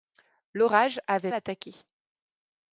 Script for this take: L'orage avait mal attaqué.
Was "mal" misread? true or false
true